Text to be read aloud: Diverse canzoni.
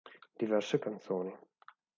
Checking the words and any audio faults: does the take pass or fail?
pass